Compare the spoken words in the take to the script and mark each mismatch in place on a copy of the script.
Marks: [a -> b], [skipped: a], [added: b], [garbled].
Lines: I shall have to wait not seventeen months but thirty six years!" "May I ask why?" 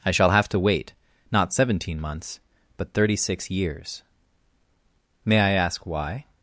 I shall have to wait not seventeen months but thirty six years!" "May I ask why?"